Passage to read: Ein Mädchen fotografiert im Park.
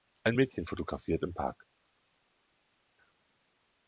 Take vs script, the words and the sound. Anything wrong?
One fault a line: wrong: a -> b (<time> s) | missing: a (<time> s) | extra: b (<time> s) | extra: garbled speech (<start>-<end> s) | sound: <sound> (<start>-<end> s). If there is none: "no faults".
no faults